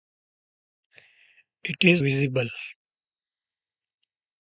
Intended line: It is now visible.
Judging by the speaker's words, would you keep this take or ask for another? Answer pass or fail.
fail